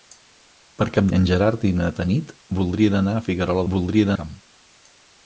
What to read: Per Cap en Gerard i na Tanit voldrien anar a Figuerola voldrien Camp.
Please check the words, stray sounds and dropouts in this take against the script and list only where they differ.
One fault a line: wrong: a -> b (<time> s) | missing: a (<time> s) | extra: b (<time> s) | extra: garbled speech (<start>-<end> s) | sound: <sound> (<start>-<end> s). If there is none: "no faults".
no faults